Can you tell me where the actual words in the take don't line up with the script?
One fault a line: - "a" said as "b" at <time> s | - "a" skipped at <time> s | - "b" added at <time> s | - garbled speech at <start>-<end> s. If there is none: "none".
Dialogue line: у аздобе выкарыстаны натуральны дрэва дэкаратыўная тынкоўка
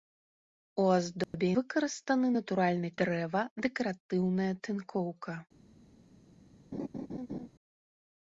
none